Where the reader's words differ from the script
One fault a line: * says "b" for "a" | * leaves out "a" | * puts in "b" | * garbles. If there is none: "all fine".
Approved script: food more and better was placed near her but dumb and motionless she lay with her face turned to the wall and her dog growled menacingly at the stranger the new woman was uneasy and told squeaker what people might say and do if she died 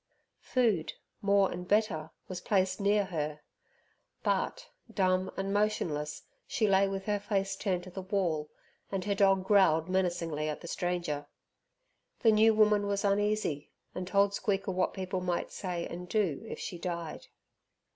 all fine